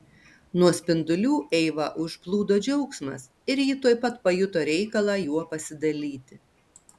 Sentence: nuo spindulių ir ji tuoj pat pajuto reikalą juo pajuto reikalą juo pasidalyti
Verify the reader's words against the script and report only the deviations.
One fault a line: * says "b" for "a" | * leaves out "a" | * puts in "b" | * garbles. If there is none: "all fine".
* puts in "eivą užplūdo džiaugsmas"
* leaves out "pajuto reikalą juo"